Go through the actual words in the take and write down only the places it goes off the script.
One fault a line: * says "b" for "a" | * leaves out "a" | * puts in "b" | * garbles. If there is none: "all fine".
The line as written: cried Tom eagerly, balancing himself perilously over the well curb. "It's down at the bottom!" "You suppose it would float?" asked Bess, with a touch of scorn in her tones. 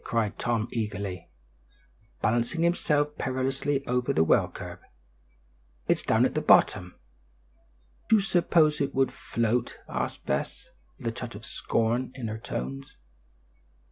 all fine